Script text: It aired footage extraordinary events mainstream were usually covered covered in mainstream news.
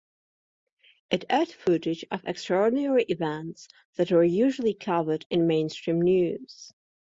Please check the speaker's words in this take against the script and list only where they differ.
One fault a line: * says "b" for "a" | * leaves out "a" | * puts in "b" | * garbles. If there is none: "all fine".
* puts in "of"
* says "that" for "mainstream"
* leaves out "covered"